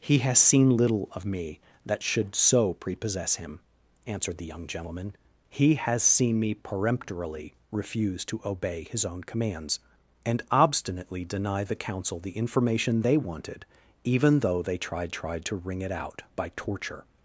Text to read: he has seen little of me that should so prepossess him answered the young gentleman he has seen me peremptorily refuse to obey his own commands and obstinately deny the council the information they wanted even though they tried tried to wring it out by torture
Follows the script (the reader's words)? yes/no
yes